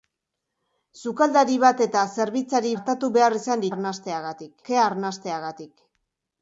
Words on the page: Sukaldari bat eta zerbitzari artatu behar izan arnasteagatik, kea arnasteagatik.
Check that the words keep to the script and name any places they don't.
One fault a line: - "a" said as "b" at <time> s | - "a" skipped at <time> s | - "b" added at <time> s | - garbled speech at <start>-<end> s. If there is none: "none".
none